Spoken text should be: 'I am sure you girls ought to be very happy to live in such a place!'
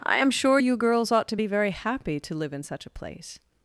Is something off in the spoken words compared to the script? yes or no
no